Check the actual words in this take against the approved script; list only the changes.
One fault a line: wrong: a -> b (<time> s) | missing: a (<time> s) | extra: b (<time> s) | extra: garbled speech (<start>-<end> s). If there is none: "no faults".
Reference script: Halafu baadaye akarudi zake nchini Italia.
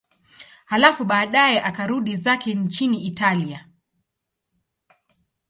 no faults